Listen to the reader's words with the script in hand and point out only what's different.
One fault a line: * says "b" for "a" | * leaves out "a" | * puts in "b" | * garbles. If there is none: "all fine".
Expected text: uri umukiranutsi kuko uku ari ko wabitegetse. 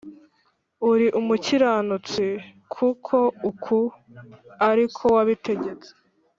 all fine